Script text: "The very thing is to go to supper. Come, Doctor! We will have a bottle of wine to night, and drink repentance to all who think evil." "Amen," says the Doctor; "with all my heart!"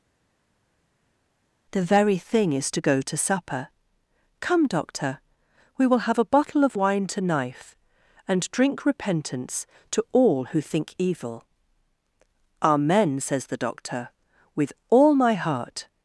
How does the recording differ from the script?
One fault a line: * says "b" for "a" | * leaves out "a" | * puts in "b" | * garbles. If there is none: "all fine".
* says "knife" for "night"